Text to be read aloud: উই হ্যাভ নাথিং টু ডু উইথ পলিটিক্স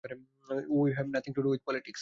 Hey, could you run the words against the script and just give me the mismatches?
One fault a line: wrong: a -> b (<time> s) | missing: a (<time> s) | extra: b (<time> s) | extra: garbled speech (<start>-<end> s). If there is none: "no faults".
no faults